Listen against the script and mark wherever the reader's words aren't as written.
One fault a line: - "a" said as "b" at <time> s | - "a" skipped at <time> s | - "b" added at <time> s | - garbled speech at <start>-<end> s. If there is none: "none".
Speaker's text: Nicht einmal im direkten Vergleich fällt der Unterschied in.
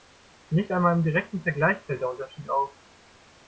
- "in" said as "auf" at 2.5 s